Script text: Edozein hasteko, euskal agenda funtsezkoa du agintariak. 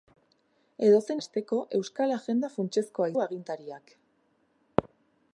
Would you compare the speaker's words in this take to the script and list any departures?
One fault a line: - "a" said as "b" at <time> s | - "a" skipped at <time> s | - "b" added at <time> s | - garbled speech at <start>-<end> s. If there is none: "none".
none